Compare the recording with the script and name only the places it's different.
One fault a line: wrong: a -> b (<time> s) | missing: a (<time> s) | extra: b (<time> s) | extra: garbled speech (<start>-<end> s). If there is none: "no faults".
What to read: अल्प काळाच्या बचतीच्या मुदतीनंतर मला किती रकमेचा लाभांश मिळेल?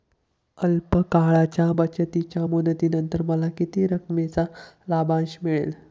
no faults